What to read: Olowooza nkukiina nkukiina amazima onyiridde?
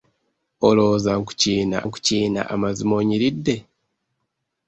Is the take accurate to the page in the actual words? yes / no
yes